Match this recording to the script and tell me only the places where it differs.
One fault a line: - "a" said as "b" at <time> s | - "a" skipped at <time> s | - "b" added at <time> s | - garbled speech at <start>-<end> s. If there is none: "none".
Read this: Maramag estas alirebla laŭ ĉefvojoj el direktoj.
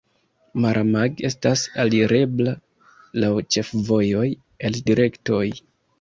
none